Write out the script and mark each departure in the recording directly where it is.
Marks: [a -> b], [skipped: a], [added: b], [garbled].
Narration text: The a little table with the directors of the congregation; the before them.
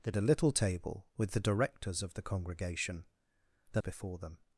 The a little table with the directors of the congregation; the before them.